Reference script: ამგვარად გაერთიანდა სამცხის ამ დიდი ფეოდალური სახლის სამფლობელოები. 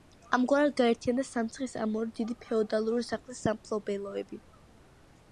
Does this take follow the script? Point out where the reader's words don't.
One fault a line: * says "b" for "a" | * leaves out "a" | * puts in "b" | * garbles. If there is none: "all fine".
* puts in "ორი"